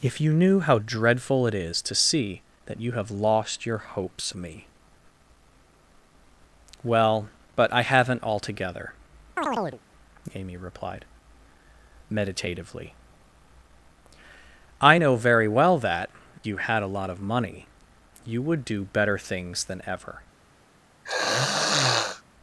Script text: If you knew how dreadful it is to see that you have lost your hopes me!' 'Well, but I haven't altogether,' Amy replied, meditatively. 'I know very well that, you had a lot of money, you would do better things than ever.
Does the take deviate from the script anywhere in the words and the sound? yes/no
yes